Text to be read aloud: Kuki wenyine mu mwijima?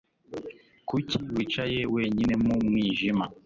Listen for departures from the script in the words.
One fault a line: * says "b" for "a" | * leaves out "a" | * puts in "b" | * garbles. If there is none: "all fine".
* puts in "wicaye"